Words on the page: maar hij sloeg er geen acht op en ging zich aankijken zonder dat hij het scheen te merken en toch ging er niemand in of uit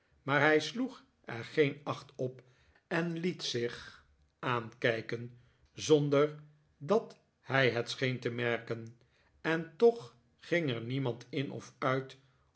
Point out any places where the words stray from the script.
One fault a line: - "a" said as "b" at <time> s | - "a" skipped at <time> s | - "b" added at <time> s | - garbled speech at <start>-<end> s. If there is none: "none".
- "ging" said as "liet" at 3.2 s